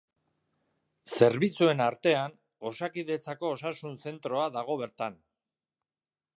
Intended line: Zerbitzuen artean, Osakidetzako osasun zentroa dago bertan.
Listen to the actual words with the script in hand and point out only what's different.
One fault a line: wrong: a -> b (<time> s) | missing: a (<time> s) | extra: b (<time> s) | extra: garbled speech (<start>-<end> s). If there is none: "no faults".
no faults